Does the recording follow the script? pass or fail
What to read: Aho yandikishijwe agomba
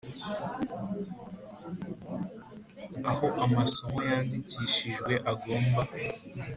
fail